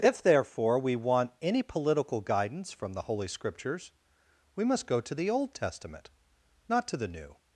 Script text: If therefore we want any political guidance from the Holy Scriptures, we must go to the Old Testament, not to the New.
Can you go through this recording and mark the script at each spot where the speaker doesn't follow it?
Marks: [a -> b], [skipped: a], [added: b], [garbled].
If therefore we want any political guidance from the Holy Scriptures, we must go to the Old Testament, not to the New.